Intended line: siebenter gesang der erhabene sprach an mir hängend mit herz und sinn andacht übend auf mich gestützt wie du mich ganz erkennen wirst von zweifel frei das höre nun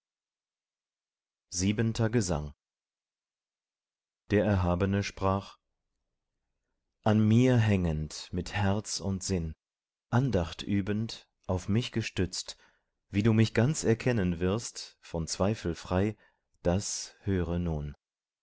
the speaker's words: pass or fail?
pass